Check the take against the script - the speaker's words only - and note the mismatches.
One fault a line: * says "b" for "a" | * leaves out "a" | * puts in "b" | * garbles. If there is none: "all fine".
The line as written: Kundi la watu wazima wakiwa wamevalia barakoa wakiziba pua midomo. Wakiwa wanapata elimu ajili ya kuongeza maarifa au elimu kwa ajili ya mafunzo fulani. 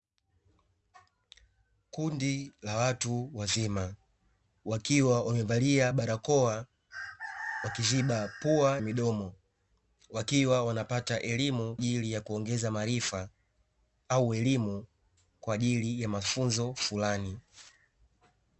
all fine